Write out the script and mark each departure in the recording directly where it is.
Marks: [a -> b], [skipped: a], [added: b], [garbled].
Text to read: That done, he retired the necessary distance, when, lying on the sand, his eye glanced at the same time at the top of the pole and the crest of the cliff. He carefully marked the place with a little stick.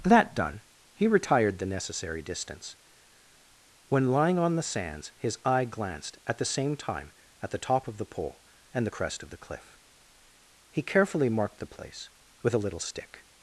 That done, he retired the necessary distance, when, lying on the [sand, -> sands] his eye glanced at the same time at the top of the pole and the crest of the cliff. He carefully marked the place with a little stick.